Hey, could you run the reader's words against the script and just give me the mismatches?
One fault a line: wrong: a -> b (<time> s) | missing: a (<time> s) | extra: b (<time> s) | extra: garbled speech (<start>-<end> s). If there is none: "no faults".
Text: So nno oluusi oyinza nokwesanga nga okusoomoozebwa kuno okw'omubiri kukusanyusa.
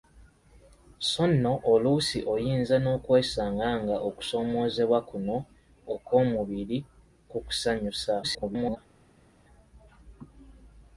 extra: garbled speech (8.2-8.8 s)